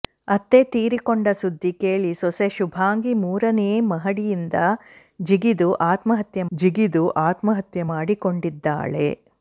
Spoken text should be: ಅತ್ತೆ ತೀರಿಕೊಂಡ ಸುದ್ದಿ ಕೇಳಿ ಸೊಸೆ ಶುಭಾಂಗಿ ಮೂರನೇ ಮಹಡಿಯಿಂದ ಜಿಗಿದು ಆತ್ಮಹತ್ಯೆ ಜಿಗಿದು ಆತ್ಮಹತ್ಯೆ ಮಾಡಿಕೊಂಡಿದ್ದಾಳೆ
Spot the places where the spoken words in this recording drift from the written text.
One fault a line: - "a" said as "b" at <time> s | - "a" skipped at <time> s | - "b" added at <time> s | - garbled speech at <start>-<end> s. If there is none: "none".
none